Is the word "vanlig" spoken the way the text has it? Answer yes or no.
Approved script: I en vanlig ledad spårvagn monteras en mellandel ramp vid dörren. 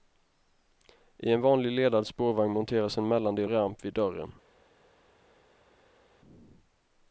yes